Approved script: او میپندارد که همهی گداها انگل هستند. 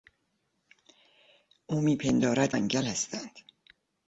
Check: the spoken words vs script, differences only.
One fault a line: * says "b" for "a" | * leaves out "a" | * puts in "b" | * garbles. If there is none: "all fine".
* leaves out "که همهی گداها"